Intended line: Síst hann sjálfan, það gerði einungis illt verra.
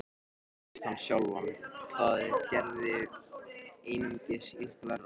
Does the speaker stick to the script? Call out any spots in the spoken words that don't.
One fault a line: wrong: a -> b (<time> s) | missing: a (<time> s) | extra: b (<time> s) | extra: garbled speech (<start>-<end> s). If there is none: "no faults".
no faults